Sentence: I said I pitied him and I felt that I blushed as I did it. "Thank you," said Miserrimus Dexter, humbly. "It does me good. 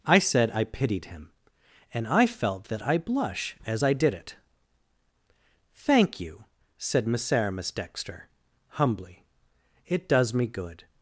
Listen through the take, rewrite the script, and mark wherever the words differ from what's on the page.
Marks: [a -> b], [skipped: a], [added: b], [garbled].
I said I pitied him and I felt that I [blushed -> blush] as I did it. "Thank you," said Miserrimus Dexter, humbly. "It does me good.